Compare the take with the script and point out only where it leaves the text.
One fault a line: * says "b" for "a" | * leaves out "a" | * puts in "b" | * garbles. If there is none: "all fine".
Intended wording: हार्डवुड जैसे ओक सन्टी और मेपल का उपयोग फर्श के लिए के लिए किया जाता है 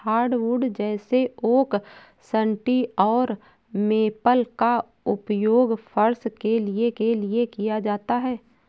all fine